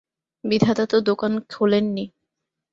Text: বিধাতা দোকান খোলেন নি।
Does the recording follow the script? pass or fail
fail